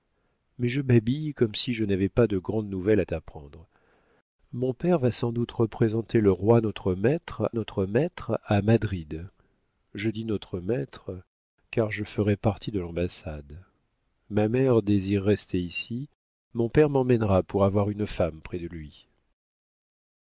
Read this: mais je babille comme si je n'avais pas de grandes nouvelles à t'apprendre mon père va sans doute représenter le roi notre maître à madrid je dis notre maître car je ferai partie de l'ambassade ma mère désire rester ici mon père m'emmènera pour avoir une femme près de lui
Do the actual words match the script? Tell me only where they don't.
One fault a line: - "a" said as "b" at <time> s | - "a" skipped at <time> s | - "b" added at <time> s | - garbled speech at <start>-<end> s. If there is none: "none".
- "notre maître" added at 7.5 s